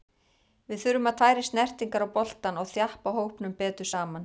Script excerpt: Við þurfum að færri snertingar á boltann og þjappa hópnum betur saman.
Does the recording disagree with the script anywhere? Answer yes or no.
no